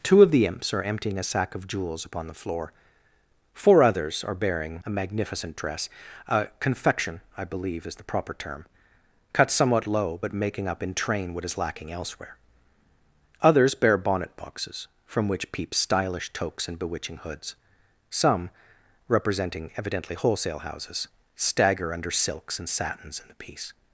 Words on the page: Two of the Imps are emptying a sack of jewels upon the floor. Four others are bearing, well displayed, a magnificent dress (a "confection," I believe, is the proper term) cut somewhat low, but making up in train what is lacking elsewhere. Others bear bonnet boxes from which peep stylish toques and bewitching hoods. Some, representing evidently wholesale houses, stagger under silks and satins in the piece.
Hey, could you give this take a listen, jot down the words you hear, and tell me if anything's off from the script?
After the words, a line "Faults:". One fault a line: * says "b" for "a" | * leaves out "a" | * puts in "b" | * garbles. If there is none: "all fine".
Two of the Imps are emptying a sack of jewels upon the floor. Four others are bearing, a magnificent dress (a "confection," I believe, is the proper term) cut somewhat low, but making up in train what is lacking elsewhere. Others bear bonnet boxes from which peep stylish toques and bewitching hoods. Some, representing evidently wholesale houses, stagger under silks and satins in the piece.
Faults:
* leaves out "well displayed"